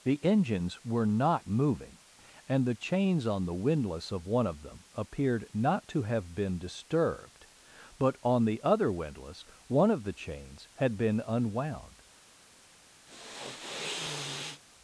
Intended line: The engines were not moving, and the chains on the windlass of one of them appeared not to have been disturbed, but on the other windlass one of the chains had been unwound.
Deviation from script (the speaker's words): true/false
false